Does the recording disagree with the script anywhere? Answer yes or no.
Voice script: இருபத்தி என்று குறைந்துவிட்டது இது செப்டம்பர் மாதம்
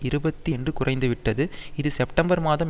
no